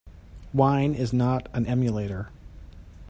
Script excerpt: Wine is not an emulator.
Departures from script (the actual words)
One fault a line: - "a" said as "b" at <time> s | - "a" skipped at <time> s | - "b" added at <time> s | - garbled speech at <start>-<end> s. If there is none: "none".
none